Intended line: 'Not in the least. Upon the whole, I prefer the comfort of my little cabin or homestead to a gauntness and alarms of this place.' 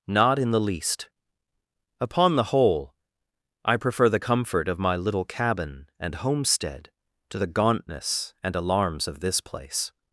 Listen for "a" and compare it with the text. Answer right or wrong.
wrong